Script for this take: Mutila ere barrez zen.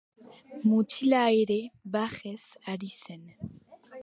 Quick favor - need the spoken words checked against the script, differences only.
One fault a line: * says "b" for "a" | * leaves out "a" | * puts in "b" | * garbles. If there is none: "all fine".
* puts in "ari"